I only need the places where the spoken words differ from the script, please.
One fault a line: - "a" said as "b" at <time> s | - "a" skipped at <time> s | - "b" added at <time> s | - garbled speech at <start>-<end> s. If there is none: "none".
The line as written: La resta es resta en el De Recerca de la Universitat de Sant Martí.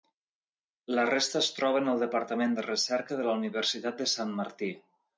- "resta" said as "troba" at 1.6 s
- "Departament" added at 2.0 s